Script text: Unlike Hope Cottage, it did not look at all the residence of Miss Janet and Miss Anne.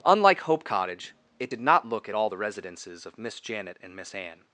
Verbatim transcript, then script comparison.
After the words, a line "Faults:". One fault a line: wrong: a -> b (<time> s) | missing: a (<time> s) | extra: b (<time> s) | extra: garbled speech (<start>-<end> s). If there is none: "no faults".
Unlike Hope Cottage, it did not look at all the residences of Miss Janet and Miss Anne.
Faults:
wrong: residence -> residences (2.4 s)